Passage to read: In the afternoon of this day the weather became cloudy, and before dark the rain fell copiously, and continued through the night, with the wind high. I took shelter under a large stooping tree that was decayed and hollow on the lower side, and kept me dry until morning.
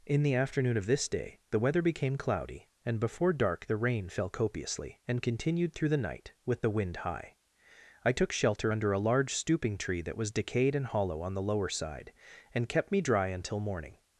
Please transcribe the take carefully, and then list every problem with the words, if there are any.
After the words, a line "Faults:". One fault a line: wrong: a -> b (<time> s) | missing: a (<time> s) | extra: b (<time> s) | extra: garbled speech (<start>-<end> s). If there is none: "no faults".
In the afternoon of this day the weather became cloudy, and before dark the rain fell copiously, and continued through the night, with the wind high. I took shelter under a large stooping tree that was decayed and hollow on the lower side, and kept me dry until morning.
Faults:
no faults